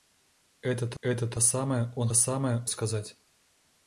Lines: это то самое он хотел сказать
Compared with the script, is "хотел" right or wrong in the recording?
wrong